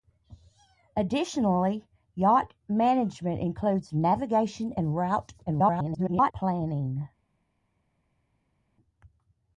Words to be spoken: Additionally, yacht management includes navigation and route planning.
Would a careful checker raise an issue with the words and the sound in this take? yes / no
yes